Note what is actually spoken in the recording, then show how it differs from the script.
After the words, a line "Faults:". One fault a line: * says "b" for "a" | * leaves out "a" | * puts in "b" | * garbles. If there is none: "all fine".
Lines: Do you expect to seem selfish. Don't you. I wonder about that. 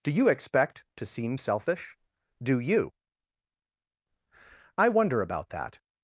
Do you expect to seem selfish. Do you. I wonder about that.
Faults:
* says "Do" for "Don't"